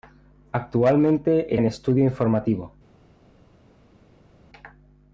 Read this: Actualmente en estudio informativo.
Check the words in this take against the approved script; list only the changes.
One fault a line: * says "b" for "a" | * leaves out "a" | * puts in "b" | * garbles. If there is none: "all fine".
all fine